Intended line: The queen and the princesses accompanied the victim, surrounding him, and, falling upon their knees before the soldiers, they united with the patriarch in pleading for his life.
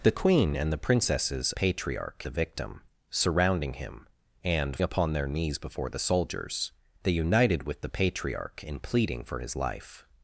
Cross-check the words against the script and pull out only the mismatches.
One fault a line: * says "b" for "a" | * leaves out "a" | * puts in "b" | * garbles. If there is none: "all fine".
* says "patriarch" for "accompanied"
* leaves out "falling"